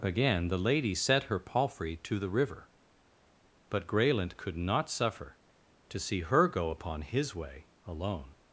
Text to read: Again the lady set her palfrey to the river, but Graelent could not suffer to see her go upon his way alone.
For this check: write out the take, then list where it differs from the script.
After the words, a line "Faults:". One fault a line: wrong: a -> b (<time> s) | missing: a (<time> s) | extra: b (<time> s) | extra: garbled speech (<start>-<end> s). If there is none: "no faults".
Again the lady set her palfrey to the river, but Graelent could not suffer to see her go upon his way alone.
Faults:
no faults